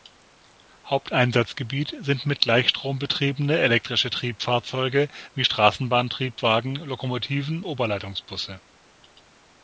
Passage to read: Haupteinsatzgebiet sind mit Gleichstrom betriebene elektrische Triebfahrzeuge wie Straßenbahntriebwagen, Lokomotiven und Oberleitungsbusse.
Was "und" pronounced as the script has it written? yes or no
no